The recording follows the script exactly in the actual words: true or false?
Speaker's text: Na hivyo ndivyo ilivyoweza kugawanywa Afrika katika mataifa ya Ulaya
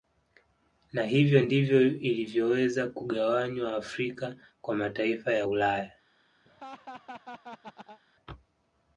false